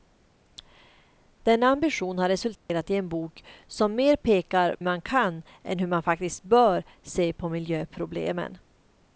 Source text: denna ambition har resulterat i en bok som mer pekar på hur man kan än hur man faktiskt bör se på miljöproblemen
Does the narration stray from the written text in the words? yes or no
yes